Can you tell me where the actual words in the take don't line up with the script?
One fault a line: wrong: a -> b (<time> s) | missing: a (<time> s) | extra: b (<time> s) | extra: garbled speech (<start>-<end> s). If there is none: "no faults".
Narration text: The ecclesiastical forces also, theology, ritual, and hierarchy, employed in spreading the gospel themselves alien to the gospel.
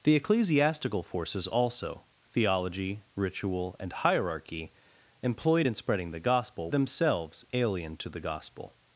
no faults